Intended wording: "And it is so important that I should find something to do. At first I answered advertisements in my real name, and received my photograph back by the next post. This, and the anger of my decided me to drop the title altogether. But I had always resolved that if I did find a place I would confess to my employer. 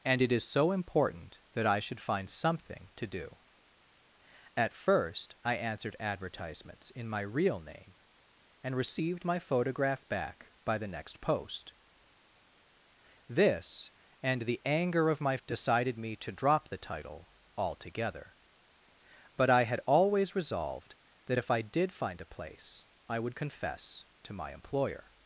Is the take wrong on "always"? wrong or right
right